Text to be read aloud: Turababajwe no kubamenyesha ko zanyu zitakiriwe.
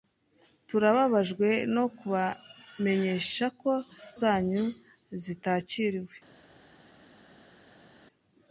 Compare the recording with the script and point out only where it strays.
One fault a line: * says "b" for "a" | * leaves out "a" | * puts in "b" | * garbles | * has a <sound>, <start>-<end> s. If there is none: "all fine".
all fine